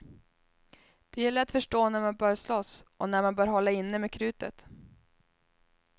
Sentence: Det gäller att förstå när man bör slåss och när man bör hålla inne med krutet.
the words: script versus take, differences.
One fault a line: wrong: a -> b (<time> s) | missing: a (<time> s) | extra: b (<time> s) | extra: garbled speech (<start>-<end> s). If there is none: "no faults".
no faults